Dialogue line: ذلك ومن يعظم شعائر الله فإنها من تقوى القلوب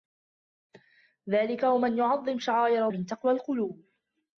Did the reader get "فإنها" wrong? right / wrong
wrong